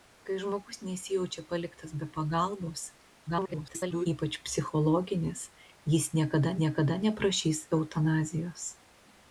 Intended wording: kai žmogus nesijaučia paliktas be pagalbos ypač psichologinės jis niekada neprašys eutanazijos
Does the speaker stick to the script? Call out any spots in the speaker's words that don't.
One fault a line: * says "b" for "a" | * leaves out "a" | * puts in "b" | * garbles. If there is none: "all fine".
* garbles
* puts in "niekada"